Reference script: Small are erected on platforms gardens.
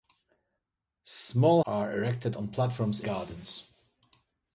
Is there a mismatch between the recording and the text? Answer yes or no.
no